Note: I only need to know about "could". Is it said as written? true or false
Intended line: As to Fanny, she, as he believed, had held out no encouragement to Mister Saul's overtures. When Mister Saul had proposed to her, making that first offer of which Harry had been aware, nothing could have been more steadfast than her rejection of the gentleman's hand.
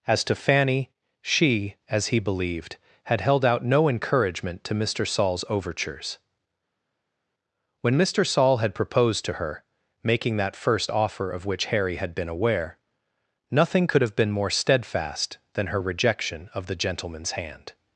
true